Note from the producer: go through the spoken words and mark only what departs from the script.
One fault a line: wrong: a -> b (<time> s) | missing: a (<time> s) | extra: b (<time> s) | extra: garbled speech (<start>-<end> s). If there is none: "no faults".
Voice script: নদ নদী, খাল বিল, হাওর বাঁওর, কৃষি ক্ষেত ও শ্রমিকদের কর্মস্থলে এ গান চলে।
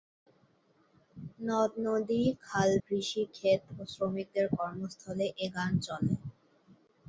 missing: বিল হাওর বাঁওর (2.7 s)